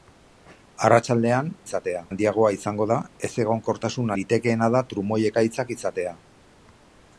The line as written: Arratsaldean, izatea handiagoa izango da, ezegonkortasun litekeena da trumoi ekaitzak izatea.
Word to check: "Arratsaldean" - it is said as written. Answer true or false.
true